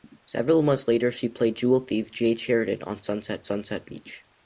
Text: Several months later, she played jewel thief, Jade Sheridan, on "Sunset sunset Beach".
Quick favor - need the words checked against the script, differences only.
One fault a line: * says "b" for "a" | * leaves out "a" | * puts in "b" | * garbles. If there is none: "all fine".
all fine